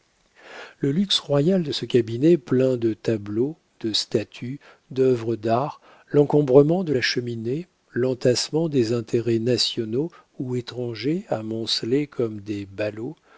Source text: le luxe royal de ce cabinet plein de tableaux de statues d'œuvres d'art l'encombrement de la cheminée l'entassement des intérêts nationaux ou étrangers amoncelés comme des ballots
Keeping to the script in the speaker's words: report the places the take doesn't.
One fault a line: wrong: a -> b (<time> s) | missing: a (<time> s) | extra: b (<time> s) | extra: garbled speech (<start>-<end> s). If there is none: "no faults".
no faults